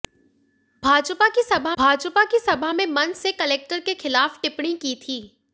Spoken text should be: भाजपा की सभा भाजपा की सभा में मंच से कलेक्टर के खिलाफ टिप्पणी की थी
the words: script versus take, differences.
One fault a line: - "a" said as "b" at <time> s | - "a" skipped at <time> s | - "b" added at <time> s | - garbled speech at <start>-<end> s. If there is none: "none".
none